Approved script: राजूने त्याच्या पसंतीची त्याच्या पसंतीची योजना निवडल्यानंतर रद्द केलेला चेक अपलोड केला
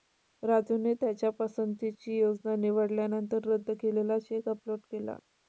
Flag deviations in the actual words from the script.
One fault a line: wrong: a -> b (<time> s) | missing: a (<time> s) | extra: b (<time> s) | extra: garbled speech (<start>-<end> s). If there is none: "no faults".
missing: त्याच्या पसंतीची (2.2 s)